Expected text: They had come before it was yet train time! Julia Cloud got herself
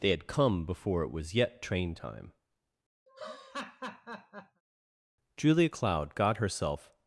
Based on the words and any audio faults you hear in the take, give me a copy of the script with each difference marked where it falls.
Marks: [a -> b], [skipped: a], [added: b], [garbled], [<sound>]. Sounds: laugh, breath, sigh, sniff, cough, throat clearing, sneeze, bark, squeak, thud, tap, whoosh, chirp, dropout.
They had come before it was yet train time! [laugh] Julia Cloud got herself